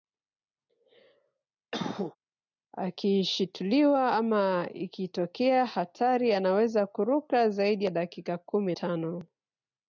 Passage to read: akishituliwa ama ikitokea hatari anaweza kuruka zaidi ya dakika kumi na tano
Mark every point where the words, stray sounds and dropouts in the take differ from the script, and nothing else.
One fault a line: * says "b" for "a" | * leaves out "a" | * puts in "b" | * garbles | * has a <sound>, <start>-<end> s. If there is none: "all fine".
* has a cough, 1.7-2.2 s
* leaves out "na"